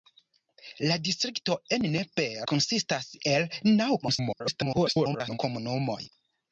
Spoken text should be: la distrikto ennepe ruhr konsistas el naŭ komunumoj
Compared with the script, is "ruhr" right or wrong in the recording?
wrong